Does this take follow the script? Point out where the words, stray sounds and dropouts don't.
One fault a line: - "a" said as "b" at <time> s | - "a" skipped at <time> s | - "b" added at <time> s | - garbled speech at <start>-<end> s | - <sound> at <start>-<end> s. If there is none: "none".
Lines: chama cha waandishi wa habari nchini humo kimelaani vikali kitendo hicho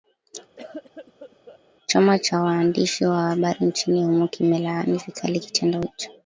- cough at 0.6-1.6 s